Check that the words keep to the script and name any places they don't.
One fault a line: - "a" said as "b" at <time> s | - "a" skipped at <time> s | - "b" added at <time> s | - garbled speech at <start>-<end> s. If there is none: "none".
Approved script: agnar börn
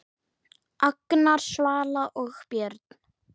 - "svala og" added at 1.4 s